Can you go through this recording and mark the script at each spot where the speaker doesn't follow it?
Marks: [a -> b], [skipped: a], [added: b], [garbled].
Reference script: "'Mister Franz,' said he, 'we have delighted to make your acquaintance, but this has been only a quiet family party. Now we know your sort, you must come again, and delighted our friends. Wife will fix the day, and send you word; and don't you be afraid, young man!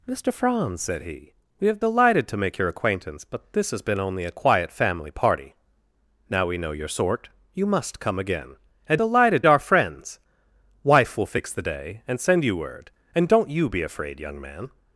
"'Mister Franz,' said he, 'we have delighted to make your acquaintance, but this has been only a quiet family party. Now we know your sort, you must come again, and delighted our friends. Wife will fix the day, and send you word; and don't you be afraid, young man!